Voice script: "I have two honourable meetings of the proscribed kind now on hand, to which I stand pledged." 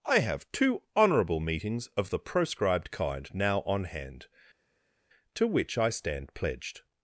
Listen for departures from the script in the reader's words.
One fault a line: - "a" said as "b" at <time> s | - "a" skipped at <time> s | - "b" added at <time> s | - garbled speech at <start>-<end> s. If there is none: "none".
none